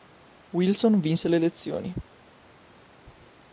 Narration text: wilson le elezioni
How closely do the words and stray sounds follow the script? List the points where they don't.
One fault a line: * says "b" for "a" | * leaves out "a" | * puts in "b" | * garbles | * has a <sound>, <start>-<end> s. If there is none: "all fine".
* puts in "vinse"